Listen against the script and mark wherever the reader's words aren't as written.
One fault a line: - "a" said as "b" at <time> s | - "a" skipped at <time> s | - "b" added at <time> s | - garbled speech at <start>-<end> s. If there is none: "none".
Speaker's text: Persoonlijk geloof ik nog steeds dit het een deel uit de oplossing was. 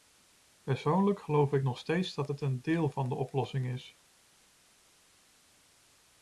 - "dit" said as "dat" at 2.1 s
- "uit" said as "van" at 2.9 s
- "was" said as "is" at 3.7 s